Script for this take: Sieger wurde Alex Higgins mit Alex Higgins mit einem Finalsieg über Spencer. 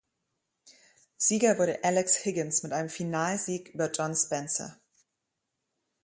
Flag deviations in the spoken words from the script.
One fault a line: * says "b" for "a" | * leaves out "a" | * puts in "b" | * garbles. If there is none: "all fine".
* leaves out "Alex Higgins mit"
* puts in "John"